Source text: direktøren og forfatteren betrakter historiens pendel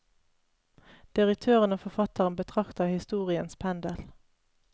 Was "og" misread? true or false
false